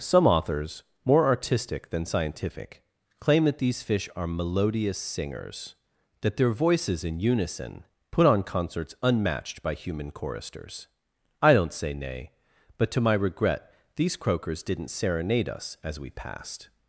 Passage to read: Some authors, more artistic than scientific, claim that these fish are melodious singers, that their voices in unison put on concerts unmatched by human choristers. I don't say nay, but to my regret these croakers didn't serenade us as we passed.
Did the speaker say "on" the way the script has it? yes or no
yes